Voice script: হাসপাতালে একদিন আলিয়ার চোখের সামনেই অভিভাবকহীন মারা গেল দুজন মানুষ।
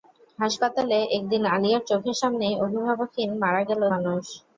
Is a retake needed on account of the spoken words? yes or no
yes